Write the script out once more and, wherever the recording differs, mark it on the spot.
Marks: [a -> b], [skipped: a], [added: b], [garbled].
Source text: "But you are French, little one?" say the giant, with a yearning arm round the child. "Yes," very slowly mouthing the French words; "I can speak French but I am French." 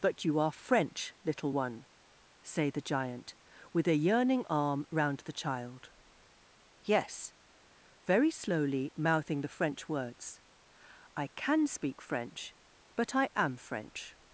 "But you are French, little one?" say the giant, with a yearning arm round the child. "Yes," very slowly mouthing the French words; "I can speak French but I am French."